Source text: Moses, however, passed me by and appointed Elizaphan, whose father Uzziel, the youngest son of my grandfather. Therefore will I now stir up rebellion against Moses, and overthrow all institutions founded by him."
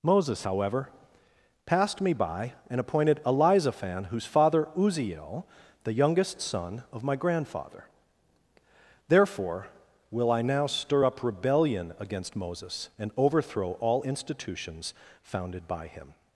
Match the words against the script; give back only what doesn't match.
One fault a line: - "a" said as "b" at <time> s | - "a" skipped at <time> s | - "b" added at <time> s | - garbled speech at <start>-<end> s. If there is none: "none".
none